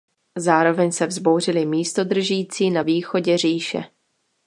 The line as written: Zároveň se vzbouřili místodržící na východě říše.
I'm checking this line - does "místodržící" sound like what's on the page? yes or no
yes